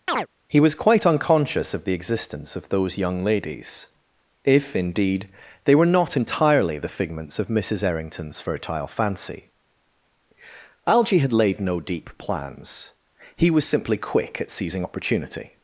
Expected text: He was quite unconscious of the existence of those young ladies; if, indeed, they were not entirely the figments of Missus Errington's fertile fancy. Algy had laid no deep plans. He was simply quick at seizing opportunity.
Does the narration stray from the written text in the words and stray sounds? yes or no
yes